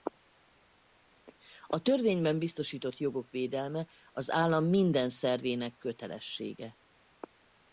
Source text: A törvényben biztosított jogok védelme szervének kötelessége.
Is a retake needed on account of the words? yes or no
yes